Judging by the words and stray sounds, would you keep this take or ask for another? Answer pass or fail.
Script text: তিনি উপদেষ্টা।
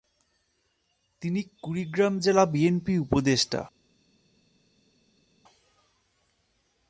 fail